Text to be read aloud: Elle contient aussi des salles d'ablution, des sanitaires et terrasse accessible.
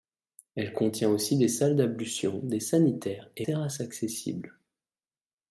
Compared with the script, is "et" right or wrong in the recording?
right